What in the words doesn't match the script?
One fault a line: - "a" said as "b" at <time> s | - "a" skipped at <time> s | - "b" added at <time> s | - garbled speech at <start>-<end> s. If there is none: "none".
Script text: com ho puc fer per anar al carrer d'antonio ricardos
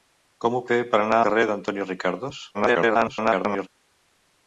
- "puc" skipped at 0.6 s
- "al" skipped at 1.2 s
- garbled speech at 2.5-3.7 s